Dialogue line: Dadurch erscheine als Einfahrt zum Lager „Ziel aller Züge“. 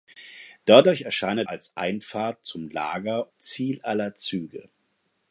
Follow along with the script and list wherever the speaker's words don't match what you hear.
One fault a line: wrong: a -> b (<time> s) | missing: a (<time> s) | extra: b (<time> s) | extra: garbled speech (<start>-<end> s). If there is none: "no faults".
no faults